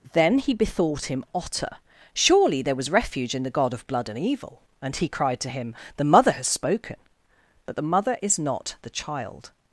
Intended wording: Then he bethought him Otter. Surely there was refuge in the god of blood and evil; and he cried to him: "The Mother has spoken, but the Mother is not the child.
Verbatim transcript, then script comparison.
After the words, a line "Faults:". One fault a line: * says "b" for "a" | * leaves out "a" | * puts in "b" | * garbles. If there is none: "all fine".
Then he bethought him Otter. Surely there was refuge in the god of blood and evil; and he cried to him: "The Mother has spoken, but the Mother is not the child.
Faults:
all fine